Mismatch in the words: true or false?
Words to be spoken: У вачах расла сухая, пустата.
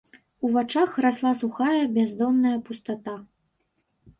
true